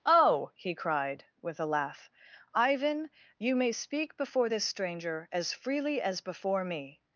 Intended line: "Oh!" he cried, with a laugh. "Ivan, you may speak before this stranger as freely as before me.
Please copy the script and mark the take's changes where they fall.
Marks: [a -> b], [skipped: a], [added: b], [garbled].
"Oh!" he cried, with a laugh. "Ivan, you may speak before this stranger as freely as before me.